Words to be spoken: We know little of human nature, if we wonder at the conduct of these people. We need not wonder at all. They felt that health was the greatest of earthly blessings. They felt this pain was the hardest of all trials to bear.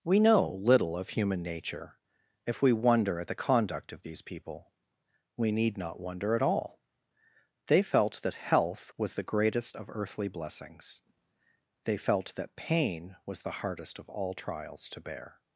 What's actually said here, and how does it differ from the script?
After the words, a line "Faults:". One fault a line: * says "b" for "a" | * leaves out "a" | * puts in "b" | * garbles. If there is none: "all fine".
We know little of human nature, if we wonder at the conduct of these people. We need not wonder at all. They felt that health was the greatest of earthly blessings. They felt that pain was the hardest of all trials to bear.
Faults:
* says "that" for "this"